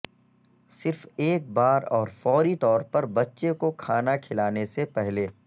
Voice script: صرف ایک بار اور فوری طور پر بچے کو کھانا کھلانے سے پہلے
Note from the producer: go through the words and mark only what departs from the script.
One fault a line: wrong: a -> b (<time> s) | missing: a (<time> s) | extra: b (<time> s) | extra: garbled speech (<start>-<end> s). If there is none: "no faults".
no faults